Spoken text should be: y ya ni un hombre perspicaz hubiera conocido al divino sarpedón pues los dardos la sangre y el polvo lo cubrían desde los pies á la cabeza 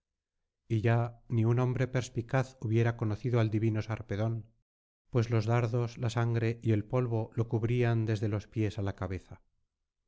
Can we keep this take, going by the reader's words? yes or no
yes